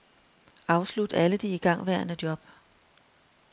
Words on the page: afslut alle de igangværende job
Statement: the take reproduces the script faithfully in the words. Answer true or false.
true